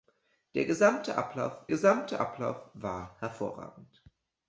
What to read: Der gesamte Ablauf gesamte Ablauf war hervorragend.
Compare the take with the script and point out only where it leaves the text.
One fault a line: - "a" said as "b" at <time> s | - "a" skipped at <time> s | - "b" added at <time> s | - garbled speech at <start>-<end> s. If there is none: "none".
none